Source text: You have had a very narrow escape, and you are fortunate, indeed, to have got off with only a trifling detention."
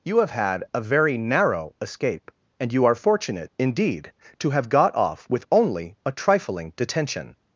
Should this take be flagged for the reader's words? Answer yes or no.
no